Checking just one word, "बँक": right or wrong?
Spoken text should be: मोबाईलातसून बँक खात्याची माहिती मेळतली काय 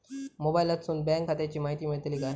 right